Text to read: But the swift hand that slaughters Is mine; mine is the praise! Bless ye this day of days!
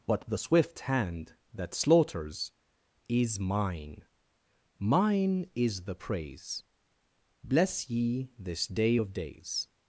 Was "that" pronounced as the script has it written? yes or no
yes